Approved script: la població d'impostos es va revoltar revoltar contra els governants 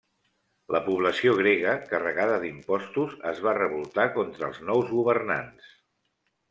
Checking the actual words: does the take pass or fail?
fail